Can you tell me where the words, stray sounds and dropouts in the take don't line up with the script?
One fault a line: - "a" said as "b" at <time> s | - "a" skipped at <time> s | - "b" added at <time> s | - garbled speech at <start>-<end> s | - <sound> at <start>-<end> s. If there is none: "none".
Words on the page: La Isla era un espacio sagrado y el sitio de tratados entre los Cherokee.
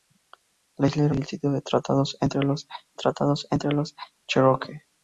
- "un espacio sagrado" skipped at 1.1 s
- "tratados entre los" added at 2.9 s